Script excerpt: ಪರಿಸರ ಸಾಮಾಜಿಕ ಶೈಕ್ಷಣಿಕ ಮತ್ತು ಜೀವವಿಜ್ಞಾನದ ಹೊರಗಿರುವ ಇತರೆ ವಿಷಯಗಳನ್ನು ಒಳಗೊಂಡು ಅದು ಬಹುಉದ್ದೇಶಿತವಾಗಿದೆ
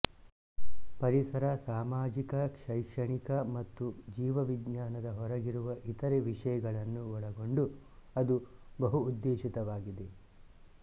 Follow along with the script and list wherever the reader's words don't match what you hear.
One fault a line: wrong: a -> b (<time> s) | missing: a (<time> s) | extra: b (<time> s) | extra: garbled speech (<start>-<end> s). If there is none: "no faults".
no faults